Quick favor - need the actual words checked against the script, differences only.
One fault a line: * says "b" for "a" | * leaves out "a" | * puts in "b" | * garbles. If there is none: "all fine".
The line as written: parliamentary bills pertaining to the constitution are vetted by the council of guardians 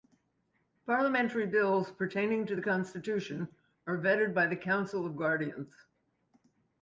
all fine